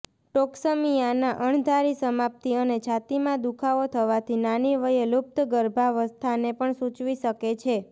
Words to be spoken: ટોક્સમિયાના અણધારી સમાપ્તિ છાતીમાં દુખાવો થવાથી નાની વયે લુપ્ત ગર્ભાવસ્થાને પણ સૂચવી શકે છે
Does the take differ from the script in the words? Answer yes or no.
yes